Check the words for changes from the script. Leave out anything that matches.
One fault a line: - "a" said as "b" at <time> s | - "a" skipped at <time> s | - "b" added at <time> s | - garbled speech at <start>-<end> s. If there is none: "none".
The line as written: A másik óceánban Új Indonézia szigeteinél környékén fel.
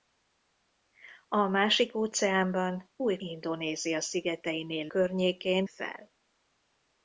none